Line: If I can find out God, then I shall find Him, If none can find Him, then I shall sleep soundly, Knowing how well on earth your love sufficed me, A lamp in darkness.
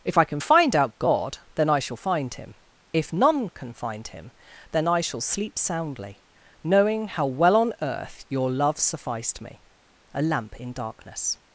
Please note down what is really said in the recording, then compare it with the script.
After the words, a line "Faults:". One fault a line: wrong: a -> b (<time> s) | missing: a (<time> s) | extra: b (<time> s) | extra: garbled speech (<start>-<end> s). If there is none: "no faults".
If I can find out God, then I shall find Him, If none can find Him, then I shall sleep soundly, Knowing how well on earth your love sufficed me, A lamp in darkness.
Faults:
no faults